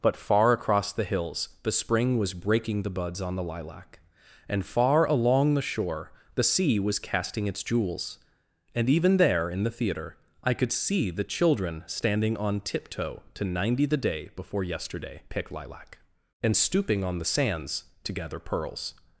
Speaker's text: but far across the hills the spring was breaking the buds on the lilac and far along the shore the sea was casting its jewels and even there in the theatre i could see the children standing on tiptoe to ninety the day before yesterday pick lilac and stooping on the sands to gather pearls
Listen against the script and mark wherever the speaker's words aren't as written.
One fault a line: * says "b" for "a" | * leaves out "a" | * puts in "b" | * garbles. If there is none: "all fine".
all fine